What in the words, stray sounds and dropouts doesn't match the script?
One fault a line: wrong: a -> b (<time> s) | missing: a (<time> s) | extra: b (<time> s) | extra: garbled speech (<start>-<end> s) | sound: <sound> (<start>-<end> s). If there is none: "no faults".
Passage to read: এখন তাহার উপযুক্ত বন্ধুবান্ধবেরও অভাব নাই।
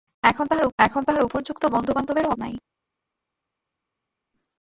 extra: এখন তাহার (0.8 s)
missing: অভাব (2.3 s)